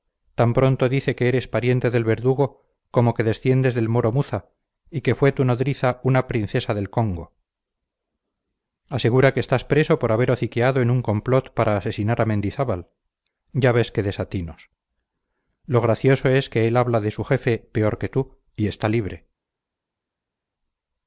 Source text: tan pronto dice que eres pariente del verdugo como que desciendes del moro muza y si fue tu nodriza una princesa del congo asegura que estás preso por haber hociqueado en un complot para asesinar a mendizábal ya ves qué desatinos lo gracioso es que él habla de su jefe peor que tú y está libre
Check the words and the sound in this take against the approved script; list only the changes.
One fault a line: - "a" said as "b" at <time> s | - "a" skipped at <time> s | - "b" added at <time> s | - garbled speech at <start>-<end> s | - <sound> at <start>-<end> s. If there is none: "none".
- "si" said as "que" at 5.0 s